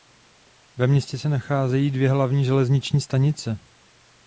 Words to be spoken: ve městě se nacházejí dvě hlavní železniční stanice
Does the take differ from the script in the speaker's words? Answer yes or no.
no